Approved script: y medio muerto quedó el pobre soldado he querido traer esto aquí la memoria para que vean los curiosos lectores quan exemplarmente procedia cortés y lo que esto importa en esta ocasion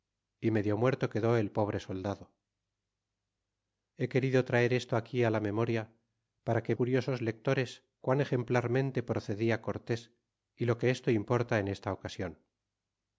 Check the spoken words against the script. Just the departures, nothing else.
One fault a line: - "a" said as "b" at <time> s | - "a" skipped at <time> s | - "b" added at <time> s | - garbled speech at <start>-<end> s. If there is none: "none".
- "vean los" skipped at 6.7 s